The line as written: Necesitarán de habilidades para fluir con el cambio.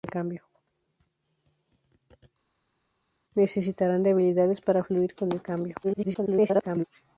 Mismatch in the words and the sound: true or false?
true